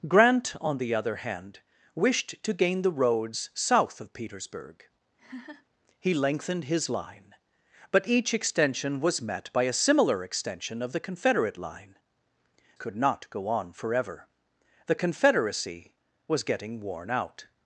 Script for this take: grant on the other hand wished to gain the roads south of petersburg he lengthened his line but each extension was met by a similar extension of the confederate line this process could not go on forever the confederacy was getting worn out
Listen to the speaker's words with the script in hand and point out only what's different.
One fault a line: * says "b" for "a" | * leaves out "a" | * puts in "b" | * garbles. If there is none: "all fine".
* leaves out "this process"